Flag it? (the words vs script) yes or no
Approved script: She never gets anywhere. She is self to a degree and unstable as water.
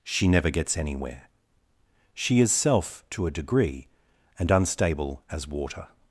no